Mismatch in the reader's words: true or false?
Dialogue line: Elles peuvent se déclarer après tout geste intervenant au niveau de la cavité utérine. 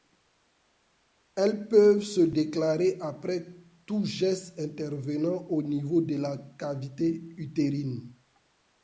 false